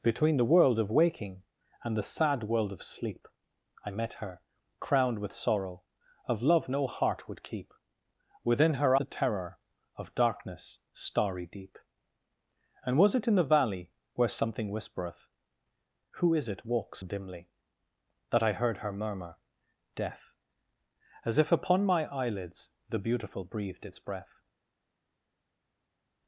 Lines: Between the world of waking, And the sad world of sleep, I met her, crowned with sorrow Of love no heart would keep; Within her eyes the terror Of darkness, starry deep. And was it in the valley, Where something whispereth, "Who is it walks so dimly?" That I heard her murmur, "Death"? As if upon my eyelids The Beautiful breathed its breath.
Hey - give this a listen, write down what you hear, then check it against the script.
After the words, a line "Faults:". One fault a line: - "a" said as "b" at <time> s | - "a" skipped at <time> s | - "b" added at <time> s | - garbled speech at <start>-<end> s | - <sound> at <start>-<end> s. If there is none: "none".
Between the world of waking, And the sad world of sleep, I met her, crowned with sorrow Of love no heart would keep; Within her the terror Of darkness, starry deep. And was it in the valley, Where something whispereth, "Who is it walks dimly?" That I heard her murmur, "Death"? As if upon my eyelids The Beautiful breathed its breath.
Faults:
- "eyes" skipped at 8.9 s
- "so" skipped at 17.0 s